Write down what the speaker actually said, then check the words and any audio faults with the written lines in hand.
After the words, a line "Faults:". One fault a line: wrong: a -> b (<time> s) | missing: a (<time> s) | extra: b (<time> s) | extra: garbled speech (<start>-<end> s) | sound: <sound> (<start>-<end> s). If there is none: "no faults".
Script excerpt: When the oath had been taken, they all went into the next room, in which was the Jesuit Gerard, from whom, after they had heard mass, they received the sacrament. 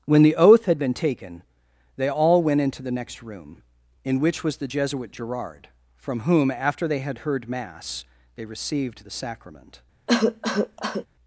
When the oath had been taken, they all went into the next room, in which was the Jesuit Gerard, from whom, after they had heard mass, they received the sacrament.
Faults:
sound: cough (10.1-11.1 s)